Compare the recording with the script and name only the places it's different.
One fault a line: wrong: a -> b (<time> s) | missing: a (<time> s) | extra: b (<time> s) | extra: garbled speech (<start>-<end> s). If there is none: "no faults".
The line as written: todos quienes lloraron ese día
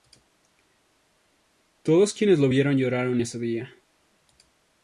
extra: lo vieron (2.4 s)